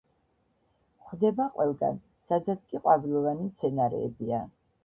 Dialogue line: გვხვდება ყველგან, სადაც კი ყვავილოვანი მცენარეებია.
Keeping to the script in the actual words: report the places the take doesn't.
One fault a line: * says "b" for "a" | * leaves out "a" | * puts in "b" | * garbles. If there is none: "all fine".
all fine